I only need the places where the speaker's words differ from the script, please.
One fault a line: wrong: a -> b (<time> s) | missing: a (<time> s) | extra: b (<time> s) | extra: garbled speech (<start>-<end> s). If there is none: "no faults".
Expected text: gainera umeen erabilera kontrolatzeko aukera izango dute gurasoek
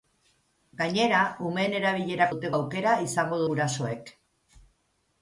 wrong: kontrolatzeko -> dute (2.3 s)
missing: dute (3.4 s)